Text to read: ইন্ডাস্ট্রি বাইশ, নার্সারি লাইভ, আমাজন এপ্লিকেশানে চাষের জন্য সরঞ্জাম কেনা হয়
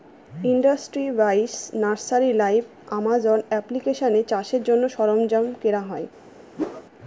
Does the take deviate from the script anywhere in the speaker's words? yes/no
no